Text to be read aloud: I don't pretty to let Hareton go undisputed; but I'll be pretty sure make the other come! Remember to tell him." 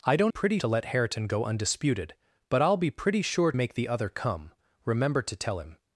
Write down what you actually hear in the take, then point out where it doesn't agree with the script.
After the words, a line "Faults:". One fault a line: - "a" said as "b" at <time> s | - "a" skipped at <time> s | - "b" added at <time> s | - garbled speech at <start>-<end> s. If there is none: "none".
I don't pretty to let Hareton go undisputed; but I'll be pretty sure make the other come! Remember to tell him."
Faults:
none